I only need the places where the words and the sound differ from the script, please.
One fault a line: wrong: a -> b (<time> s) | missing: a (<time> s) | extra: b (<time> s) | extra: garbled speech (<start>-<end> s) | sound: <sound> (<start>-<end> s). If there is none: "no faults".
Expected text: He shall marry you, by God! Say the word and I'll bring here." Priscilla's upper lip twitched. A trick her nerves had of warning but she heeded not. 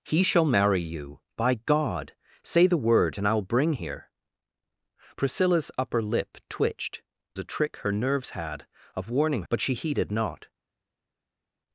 no faults